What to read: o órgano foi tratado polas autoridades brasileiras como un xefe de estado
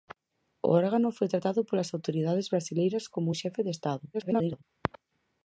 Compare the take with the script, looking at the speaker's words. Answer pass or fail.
fail